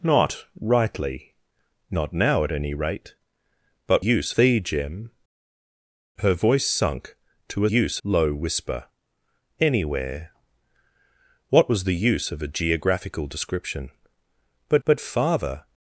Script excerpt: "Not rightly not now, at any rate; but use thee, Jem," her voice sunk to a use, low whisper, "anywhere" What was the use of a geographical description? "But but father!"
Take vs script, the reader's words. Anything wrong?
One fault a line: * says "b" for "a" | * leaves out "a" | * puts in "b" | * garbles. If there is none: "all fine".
all fine